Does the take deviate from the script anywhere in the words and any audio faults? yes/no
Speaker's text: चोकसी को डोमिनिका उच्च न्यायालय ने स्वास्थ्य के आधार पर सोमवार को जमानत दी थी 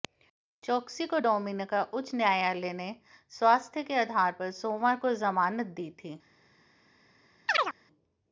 yes